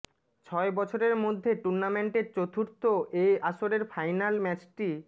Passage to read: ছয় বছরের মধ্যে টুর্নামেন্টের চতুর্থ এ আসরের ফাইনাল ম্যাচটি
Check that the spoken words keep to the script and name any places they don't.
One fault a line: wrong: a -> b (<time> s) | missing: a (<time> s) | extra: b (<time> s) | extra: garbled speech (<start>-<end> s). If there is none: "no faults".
no faults